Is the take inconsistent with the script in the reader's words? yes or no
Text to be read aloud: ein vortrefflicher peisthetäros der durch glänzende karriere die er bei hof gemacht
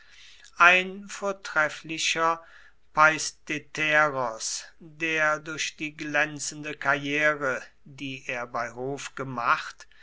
yes